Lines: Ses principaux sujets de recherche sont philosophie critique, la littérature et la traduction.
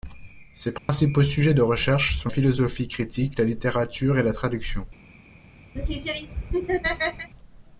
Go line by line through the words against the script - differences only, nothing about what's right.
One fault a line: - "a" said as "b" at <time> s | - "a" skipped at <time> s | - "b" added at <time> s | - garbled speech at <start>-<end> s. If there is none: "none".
none